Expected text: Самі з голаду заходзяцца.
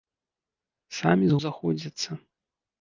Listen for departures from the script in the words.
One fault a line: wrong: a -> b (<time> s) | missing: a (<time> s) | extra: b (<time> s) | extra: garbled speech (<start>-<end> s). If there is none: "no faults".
missing: голаду (1.4 s)